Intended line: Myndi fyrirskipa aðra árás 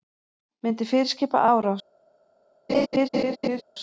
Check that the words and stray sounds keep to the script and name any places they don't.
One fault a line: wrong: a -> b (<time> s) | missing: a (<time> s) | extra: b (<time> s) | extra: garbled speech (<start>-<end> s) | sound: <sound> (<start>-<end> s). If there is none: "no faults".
missing: aðra (1.4 s)
sound: laugh (2.7-3.6 s)